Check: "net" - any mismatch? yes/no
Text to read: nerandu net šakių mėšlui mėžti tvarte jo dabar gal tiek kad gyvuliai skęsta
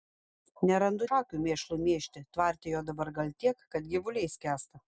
yes